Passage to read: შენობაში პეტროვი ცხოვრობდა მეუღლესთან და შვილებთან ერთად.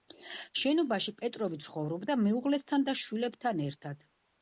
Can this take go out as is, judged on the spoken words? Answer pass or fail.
pass